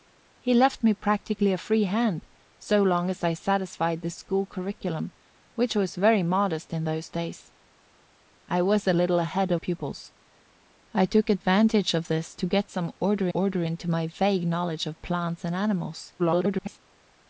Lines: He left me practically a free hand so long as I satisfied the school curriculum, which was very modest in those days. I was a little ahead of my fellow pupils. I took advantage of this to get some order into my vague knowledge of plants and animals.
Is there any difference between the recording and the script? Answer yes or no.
yes